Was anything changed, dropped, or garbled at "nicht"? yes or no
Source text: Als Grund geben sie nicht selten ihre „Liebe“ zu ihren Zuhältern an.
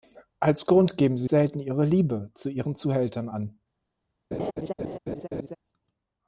yes